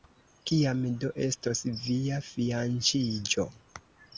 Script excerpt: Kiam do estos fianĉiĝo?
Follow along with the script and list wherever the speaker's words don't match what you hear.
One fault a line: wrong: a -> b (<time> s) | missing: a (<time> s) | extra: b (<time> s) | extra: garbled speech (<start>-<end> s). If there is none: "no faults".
extra: via (1.8 s)